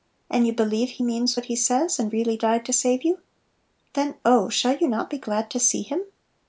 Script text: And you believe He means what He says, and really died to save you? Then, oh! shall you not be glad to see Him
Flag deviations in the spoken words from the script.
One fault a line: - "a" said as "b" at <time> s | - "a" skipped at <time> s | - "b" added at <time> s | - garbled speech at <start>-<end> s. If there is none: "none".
none